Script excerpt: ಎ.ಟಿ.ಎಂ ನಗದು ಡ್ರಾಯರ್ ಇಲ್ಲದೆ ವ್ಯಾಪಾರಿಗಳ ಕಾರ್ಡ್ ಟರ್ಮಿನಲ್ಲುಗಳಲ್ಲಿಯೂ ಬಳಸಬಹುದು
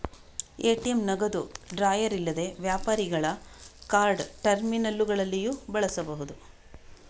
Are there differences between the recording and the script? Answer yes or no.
no